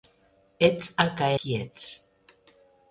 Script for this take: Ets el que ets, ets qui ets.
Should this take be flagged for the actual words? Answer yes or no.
yes